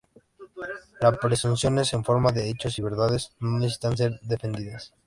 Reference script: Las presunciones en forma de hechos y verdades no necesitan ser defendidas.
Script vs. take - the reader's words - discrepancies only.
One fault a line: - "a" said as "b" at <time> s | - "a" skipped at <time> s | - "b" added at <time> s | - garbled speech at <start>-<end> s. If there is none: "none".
none